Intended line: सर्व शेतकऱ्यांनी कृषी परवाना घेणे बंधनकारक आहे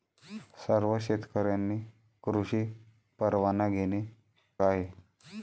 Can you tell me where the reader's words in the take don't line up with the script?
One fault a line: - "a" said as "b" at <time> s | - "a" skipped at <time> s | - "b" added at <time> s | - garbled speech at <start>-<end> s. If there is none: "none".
- "बंधनकारक" skipped at 4.0 s